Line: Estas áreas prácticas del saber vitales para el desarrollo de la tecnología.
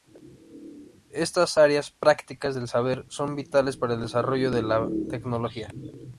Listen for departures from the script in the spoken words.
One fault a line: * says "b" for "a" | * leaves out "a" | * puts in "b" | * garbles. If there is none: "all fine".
* puts in "son"